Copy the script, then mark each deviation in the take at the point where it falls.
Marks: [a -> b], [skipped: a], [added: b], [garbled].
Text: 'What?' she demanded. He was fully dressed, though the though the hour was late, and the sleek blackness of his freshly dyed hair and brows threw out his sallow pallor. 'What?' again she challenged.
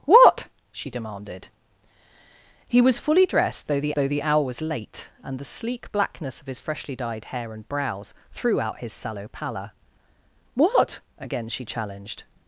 'What?' she demanded. He was fully dressed, though the though the hour was late, and the sleek blackness of his freshly dyed hair and brows threw out his sallow pallor. 'What?' again she challenged.